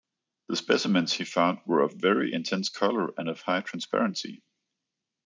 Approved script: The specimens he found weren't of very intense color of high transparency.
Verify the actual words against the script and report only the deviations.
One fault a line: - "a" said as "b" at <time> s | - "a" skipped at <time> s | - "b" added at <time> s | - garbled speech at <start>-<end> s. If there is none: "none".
- "weren't" said as "were" at 1.7 s
- "and" added at 3.2 s